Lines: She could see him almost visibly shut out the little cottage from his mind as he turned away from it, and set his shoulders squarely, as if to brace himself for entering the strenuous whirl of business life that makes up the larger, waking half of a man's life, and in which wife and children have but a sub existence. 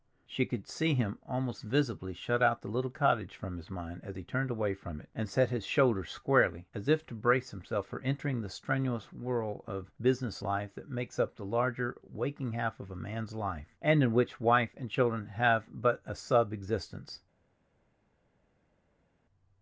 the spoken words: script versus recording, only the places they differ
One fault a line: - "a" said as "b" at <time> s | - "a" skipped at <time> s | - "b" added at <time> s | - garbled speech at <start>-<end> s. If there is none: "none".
none